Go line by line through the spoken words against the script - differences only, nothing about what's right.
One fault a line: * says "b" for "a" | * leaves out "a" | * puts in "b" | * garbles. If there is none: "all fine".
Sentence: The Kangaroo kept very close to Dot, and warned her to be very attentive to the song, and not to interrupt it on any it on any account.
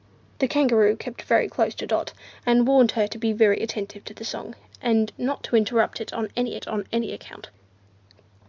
all fine